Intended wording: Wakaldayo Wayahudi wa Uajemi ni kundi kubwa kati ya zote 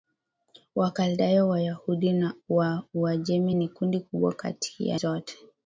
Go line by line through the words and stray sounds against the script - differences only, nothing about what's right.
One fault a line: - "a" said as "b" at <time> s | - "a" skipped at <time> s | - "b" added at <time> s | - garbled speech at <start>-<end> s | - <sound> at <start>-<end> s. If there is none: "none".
none